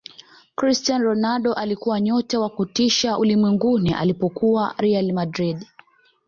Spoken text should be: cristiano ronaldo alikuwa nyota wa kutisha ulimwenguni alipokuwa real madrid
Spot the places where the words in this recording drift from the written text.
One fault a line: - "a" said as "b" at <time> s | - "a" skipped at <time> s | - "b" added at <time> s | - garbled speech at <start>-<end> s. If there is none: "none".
none